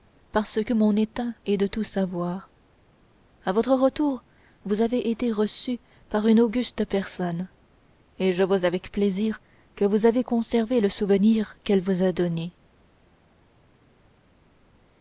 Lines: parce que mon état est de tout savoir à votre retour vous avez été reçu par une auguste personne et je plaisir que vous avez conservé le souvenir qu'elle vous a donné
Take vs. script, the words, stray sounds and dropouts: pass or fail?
fail